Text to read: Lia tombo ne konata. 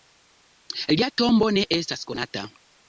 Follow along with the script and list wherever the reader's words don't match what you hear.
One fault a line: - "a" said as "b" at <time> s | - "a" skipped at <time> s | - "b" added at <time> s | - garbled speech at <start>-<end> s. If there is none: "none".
- "estas" added at 1.8 s